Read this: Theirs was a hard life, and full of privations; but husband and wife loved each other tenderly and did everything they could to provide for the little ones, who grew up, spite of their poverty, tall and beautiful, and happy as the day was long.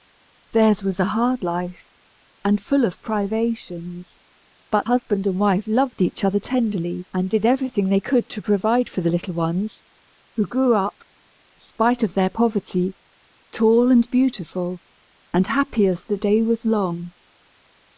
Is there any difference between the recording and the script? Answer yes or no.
no